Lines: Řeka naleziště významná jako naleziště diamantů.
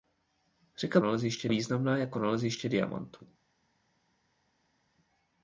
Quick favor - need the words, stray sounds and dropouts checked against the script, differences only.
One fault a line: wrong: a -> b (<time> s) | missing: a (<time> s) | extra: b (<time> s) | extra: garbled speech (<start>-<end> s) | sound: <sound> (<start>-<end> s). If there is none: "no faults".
no faults